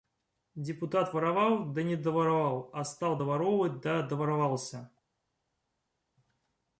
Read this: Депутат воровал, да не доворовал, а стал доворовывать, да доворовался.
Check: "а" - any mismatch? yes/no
no